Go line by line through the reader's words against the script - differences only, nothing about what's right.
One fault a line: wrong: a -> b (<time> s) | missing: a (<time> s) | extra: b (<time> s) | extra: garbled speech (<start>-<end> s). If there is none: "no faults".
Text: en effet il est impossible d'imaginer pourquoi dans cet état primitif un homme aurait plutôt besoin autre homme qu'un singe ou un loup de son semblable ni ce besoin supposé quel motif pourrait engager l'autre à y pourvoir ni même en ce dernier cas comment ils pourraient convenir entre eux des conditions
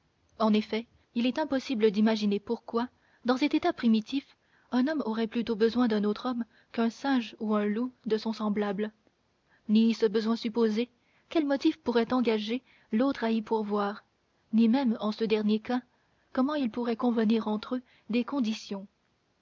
extra: d'un (5.9 s)